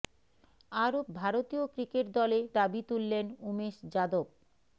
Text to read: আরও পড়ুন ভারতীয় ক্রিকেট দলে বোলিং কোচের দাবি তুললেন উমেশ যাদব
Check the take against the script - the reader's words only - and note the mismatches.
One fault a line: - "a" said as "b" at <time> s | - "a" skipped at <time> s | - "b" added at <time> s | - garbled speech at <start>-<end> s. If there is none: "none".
- "পড়ুন" skipped at 1.0 s
- "বোলিং কোচের" skipped at 2.4 s